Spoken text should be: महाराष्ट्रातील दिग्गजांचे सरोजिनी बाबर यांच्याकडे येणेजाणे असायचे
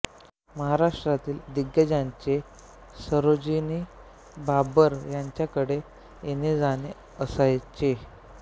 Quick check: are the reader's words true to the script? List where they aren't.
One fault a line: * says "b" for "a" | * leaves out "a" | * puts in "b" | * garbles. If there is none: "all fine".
all fine